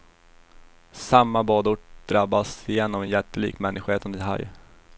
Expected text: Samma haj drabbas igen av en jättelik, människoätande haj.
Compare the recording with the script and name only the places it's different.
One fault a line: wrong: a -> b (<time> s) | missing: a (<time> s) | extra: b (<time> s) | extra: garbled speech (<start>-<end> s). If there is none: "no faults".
wrong: haj -> badort (1.4 s)